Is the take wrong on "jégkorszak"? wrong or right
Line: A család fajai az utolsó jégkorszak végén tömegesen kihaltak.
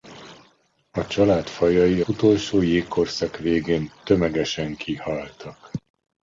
right